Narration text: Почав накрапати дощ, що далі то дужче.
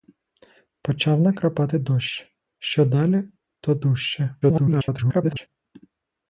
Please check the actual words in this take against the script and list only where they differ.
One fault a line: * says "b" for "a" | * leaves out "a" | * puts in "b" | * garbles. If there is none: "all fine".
* garbles